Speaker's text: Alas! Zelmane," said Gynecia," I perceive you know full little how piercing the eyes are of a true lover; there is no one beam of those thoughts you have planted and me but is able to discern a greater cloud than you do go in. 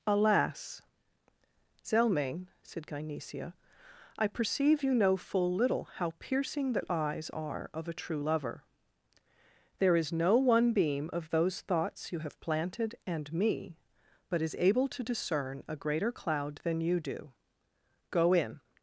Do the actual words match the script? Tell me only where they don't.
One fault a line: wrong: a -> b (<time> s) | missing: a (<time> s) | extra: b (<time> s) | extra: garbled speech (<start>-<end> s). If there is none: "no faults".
no faults